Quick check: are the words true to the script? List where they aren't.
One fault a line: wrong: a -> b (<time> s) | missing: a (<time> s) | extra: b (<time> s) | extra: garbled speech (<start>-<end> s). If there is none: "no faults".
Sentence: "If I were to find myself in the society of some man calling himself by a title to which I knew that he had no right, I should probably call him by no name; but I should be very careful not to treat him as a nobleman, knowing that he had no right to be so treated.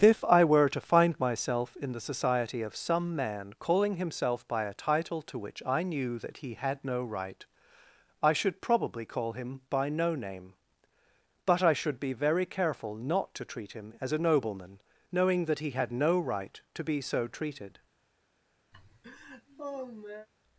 no faults